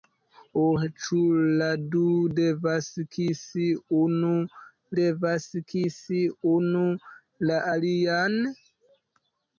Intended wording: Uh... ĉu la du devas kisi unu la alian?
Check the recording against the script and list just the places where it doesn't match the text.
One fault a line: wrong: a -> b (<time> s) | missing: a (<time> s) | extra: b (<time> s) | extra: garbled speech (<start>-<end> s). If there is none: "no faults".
extra: devas kisi unu (5.0 s)